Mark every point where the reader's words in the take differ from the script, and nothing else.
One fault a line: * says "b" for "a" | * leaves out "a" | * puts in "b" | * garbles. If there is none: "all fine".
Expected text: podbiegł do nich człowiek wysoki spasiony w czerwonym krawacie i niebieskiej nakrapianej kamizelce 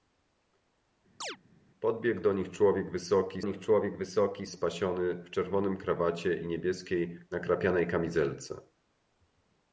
* puts in "nich człowiek wysoki"